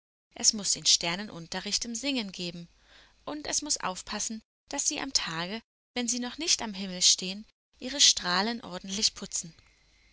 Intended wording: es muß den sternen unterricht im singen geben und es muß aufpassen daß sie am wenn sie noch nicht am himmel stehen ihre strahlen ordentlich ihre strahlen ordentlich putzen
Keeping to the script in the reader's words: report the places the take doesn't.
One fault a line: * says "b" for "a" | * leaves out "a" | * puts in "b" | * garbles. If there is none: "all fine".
* puts in "tage"
* leaves out "ihre strahlen ordentlich"